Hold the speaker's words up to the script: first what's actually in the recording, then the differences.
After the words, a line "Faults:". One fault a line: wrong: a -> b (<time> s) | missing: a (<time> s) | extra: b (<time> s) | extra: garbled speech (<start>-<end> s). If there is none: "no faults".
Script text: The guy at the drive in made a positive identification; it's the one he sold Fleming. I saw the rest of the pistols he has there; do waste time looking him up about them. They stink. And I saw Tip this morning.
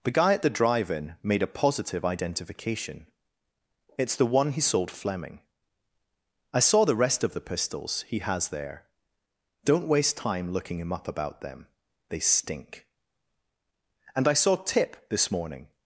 The guy at the drive in made a positive identification; it's the one he sold Fleming. I saw the rest of the pistols he has there; don't waste time looking him up about them. They stink. And I saw Tip this morning.
Faults:
wrong: do -> don't (9.6 s)